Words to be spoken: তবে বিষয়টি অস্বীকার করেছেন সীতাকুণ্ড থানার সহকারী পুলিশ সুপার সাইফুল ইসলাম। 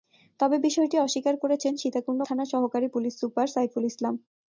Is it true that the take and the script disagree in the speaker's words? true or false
false